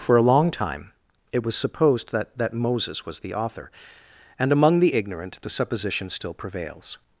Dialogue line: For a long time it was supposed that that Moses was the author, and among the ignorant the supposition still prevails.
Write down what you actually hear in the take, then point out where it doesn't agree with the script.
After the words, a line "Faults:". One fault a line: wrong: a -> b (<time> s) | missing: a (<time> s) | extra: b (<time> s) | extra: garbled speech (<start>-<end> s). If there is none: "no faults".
For a long time it was supposed that that Moses was the author, and among the ignorant the supposition still prevails.
Faults:
no faults